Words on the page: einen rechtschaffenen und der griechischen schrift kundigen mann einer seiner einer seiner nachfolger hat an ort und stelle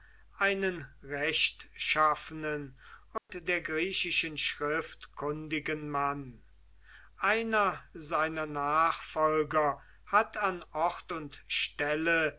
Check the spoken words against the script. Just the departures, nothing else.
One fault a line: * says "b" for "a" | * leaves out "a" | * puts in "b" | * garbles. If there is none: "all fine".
* leaves out "einer seiner"